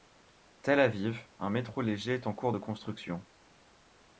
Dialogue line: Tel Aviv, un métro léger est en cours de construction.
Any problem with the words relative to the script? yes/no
no